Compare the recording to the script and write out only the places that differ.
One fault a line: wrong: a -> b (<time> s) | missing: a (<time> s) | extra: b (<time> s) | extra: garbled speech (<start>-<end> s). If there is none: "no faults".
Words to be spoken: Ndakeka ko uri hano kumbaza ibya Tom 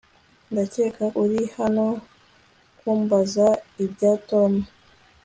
missing: ko (1.1 s)